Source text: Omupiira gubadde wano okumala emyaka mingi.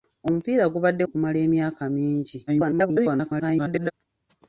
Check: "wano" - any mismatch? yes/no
yes